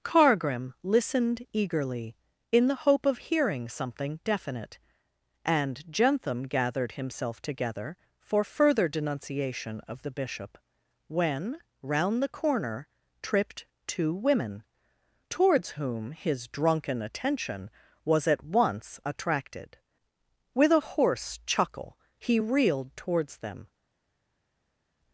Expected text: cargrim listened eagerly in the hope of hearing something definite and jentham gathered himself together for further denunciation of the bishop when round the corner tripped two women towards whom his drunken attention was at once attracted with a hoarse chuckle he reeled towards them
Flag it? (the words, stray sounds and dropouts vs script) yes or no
no